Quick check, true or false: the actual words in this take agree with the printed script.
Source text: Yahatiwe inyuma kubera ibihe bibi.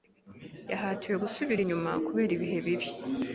false